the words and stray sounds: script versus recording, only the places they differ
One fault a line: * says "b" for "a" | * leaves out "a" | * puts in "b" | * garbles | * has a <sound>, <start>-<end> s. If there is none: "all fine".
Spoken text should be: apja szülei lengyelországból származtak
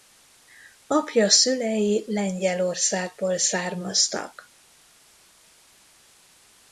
all fine